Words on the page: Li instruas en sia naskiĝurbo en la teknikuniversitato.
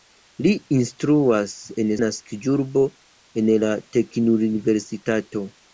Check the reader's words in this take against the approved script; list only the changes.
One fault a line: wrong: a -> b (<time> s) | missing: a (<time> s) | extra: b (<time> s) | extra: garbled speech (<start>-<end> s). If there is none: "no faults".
missing: sia (1.9 s)